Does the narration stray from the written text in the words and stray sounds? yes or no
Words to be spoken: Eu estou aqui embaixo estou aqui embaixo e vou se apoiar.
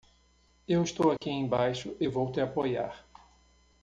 yes